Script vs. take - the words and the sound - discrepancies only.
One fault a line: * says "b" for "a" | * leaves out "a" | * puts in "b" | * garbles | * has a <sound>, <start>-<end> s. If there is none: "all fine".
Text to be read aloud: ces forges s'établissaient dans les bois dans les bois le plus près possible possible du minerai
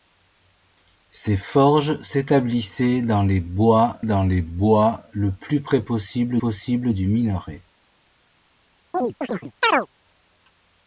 * has a chirp, 8.9-9.9 s